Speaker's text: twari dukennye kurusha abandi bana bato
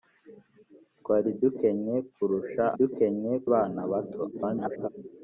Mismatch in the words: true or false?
true